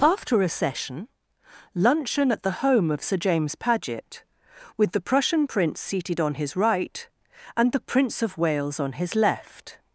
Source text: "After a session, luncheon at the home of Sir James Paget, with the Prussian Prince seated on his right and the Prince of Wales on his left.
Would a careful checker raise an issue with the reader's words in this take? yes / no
no